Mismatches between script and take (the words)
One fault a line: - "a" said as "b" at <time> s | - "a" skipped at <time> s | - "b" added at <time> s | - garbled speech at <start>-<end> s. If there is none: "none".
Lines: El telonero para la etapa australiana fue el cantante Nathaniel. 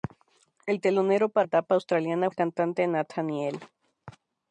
- "la" skipped at 1.5 s
- "fue" skipped at 2.3 s